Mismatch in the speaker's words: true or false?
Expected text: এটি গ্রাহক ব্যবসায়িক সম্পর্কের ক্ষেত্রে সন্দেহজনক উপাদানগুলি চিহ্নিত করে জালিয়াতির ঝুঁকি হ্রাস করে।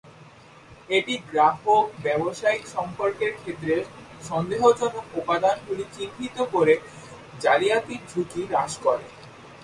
false